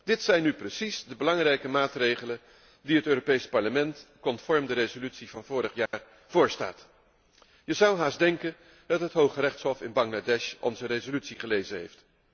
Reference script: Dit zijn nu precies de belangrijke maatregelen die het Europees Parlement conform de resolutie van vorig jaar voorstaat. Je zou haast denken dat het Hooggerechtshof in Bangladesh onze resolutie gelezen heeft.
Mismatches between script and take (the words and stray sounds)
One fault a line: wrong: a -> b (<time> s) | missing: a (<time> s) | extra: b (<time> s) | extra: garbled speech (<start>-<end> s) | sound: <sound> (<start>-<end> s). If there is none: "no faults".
sound: dropout (5.9-5.9 s)